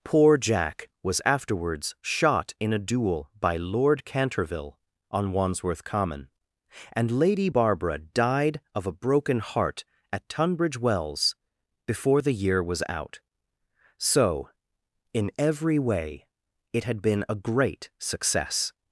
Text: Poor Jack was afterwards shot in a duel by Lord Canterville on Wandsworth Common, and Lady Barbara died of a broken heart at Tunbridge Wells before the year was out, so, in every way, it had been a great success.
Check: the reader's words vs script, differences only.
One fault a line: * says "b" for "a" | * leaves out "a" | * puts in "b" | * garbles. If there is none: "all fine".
all fine